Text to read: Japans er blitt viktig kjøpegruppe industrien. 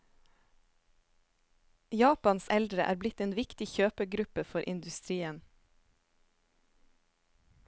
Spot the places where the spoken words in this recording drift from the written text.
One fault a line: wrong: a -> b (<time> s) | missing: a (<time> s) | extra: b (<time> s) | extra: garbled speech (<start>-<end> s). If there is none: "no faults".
extra: eldre (2.5 s)
extra: en (3.2 s)
extra: for (4.5 s)